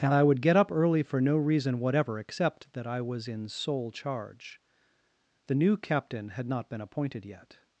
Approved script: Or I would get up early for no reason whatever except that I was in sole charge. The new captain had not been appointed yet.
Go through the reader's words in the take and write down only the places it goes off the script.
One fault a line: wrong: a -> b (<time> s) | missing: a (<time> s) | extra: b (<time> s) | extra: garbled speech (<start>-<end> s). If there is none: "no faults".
wrong: Or -> And (0.0 s)